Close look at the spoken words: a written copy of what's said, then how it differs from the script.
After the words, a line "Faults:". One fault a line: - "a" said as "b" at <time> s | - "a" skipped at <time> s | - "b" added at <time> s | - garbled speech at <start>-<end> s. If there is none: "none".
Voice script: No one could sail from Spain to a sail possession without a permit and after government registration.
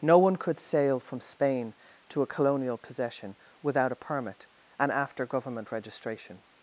No one could sail from Spain to a colonial possession without a permit and after government registration.
Faults:
- "sail" said as "colonial" at 2.3 s